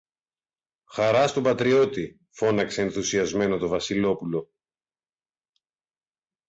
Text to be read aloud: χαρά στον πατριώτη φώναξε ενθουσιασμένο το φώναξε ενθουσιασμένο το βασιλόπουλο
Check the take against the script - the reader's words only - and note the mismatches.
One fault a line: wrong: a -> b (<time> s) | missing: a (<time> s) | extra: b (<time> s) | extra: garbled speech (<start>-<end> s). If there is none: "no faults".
missing: φώναξε ενθουσιασμένο το (3.7 s)